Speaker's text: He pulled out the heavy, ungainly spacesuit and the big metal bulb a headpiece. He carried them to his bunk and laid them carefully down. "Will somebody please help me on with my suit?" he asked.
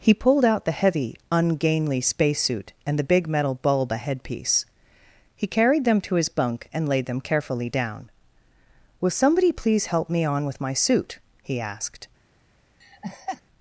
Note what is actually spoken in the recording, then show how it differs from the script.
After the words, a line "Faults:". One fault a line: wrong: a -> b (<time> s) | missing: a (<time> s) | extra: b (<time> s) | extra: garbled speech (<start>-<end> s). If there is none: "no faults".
He pulled out the heavy, ungainly spacesuit and the big metal bulb a headpiece. He carried them to his bunk and laid them carefully down. "Will somebody please help me on with my suit?" he asked.
Faults:
no faults